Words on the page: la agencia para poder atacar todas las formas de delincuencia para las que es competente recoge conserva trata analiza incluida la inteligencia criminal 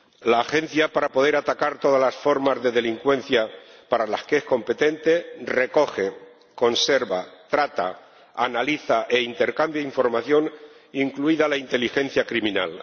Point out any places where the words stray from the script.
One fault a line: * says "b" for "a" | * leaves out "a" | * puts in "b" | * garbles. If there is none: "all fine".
* puts in "e intercambia información"